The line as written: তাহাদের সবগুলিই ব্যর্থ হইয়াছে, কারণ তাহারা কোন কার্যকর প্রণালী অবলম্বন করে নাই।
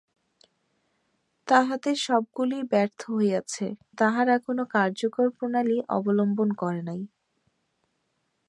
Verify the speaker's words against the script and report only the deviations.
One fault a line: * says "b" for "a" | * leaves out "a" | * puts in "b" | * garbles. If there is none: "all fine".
* leaves out "কারণ"